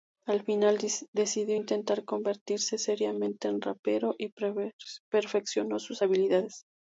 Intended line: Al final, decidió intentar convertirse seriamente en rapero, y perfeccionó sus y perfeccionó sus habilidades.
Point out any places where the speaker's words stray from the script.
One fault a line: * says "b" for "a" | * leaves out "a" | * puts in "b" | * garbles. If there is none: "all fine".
* leaves out "y perfeccionó sus"